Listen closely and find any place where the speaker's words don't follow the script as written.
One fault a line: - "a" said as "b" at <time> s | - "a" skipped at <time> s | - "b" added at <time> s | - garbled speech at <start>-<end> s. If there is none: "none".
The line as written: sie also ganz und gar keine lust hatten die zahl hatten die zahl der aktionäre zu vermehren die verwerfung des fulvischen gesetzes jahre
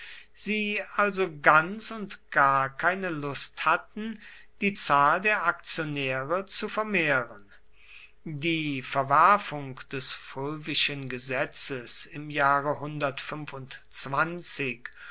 - "hatten die zahl" skipped at 5.2 s
- "im" added at 12.1 s